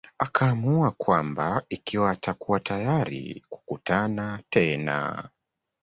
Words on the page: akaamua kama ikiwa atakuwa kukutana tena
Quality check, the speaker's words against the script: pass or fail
fail